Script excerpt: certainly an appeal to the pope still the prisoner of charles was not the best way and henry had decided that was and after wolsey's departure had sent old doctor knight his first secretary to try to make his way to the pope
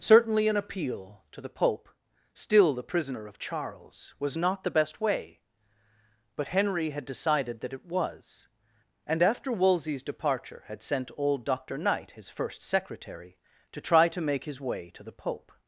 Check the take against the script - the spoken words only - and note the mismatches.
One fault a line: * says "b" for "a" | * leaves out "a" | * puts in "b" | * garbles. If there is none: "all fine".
* says "but" for "and"
* puts in "it"